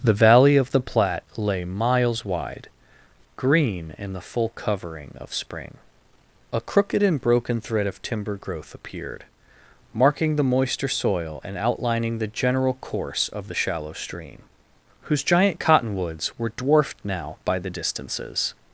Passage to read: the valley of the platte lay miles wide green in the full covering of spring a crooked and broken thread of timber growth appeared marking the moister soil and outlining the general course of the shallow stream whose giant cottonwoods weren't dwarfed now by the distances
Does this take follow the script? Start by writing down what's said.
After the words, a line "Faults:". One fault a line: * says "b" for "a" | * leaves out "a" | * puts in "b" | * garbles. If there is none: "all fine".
the valley of the platte lay miles wide green in the full covering of spring a crooked and broken thread of timber growth appeared marking the moister soil and outlining the general course of the shallow stream whose giant cottonwoods were dwarfed now by the distances
Faults:
* says "were" for "weren't"